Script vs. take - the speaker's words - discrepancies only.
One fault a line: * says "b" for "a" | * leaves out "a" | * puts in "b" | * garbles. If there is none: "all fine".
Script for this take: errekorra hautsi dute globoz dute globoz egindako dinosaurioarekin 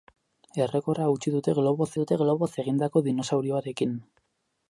all fine